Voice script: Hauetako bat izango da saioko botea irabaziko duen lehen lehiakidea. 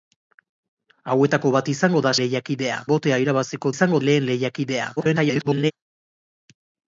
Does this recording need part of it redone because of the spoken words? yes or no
yes